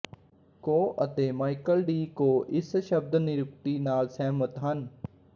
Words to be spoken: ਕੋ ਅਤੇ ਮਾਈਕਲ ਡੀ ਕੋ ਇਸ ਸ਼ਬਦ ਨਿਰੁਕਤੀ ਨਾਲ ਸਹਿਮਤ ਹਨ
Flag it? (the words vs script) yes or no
no